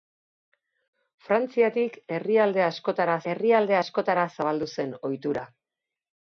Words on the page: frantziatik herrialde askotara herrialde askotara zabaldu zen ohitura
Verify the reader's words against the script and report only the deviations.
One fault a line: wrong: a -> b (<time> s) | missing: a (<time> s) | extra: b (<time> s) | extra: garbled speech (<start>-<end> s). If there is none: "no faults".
no faults